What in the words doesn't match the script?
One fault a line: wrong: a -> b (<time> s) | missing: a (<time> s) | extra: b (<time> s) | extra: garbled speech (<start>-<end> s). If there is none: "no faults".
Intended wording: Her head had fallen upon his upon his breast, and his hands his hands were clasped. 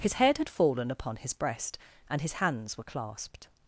wrong: Her -> His (0.0 s)
missing: upon his (1.3 s)
missing: his hands (2.8 s)